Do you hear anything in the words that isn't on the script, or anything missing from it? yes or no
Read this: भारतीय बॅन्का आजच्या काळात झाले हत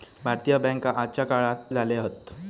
no